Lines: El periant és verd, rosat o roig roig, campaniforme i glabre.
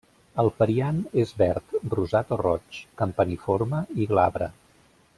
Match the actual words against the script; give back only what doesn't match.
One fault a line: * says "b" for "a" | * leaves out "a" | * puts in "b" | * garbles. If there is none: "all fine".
* leaves out "roig"